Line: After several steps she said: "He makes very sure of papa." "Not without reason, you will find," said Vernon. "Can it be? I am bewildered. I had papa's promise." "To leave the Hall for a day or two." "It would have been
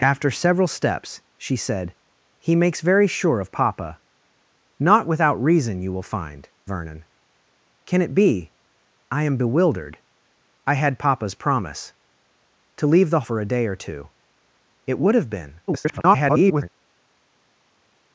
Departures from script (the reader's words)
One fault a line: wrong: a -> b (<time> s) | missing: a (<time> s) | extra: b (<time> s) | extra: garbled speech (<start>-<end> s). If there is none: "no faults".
missing: said (6.5 s)
missing: Hall (13.3 s)
extra: garbled speech (15.7-16.7 s)